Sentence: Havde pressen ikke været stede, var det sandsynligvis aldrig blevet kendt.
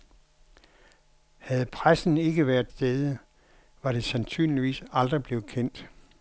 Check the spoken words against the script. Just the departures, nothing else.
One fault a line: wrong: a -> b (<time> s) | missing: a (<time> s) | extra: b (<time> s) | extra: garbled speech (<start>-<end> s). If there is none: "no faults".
no faults